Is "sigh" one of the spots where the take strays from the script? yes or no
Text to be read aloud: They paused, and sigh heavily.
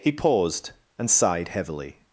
yes